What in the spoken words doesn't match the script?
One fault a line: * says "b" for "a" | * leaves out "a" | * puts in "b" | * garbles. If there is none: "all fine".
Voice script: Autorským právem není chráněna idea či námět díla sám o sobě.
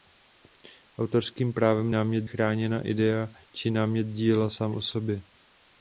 * says "námět" for "není"